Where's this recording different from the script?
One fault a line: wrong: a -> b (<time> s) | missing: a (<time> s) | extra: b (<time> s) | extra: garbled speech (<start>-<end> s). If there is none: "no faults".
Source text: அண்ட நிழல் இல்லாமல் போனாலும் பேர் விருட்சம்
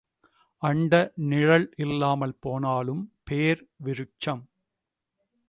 no faults